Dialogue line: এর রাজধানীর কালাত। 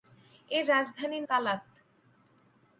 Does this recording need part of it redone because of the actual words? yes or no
no